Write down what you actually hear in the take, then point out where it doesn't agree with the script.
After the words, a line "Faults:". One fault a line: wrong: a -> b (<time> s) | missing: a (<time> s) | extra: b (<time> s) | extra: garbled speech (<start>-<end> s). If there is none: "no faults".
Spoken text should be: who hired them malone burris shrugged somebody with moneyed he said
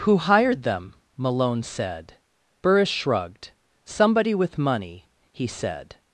who hired them malone said burris shrugged somebody with money he said
Faults:
extra: said (1.6 s)
wrong: moneyed -> money (4.6 s)